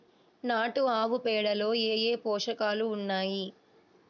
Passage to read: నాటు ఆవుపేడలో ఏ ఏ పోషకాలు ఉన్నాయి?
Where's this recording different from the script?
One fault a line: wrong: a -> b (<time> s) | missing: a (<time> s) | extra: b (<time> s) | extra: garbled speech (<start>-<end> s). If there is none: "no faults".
no faults